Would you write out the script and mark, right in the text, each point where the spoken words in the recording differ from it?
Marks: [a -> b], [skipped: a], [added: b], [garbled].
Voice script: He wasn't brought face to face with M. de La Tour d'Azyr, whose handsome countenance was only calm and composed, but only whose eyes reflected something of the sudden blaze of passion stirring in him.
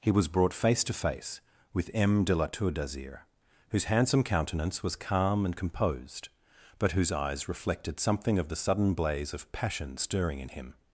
He [wasn't -> was] brought face to face with M. de La Tour d'Azyr, whose handsome countenance was [skipped: only] calm and composed, but [skipped: only] whose eyes reflected something of the sudden blaze of passion stirring in him.